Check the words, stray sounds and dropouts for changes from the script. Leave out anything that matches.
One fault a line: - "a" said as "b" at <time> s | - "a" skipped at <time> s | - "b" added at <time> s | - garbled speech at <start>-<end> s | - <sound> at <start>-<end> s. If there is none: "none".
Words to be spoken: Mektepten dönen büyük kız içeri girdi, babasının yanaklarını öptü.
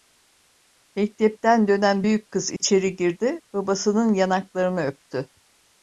- dropout at 2.6-2.6 s